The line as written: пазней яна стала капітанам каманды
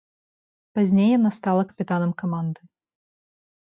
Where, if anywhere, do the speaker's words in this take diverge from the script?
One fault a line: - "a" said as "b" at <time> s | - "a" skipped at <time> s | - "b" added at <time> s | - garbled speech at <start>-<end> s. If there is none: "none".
none